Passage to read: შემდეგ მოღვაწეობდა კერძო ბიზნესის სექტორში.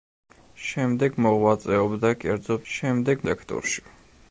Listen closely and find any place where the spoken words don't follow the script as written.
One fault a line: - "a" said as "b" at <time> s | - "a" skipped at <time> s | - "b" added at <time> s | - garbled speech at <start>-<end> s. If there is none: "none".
- "ბიზნესის" said as "შემდეგ" at 2.7 s